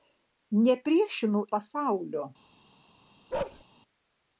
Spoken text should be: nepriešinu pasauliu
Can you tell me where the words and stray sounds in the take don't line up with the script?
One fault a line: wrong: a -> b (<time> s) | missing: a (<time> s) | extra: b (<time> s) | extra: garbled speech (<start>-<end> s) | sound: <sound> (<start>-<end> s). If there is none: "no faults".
sound: bark (3.3-3.6 s)